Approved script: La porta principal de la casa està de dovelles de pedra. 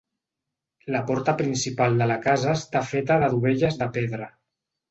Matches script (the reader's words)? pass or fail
fail